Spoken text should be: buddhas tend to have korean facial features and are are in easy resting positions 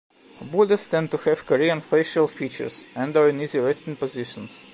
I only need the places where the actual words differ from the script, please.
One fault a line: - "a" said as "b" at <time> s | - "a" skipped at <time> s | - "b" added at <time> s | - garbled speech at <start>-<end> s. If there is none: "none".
- "are" skipped at 3.3 s